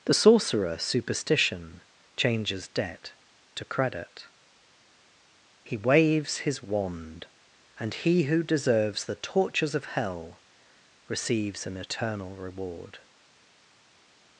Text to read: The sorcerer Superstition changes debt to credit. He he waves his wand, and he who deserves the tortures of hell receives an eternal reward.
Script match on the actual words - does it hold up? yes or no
no